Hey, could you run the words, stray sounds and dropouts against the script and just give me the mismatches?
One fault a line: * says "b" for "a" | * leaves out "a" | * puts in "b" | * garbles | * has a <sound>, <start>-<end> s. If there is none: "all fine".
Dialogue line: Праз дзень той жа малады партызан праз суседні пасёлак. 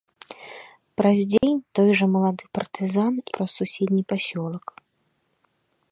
* has a dropout, 1.4-1.4 s